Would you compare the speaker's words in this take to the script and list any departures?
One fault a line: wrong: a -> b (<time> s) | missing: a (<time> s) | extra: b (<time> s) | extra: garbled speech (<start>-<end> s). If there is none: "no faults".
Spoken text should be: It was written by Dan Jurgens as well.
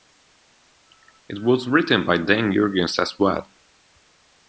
no faults